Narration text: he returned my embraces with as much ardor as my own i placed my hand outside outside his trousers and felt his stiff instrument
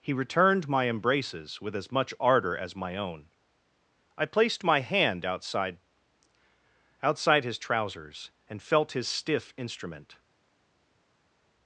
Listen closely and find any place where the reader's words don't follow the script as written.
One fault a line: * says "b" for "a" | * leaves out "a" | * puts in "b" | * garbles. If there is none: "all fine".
all fine